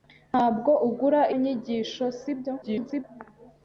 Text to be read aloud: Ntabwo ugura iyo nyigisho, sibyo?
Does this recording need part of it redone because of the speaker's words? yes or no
yes